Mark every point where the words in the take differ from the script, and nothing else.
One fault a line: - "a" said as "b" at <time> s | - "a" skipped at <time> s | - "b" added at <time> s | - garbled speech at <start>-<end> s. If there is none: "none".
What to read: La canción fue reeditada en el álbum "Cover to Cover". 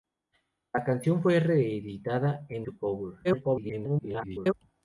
- "el álbum Cover" skipped at 2.7 s
- garbled speech at 3.2-4.5 s